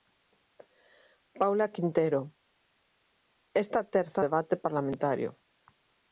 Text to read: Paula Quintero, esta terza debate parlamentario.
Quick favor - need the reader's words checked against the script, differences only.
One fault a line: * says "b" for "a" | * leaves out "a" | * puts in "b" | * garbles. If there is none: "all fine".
all fine